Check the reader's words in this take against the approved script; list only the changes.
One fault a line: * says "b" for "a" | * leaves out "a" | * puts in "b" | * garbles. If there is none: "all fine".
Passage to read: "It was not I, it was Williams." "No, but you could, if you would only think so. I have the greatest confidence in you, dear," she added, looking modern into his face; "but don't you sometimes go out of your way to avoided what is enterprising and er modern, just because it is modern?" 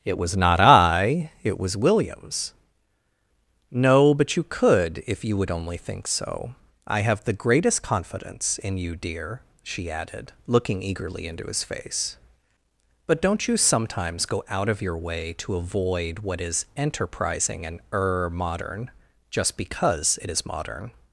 * says "eagerly" for "modern"
* says "avoid" for "avoided"